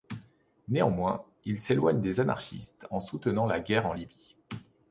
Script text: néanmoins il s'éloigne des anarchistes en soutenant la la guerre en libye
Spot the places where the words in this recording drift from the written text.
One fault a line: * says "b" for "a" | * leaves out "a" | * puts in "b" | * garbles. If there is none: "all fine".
* leaves out "la"